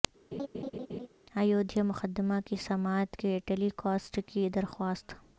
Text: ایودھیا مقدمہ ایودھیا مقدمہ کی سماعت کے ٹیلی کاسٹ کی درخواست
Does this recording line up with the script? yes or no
no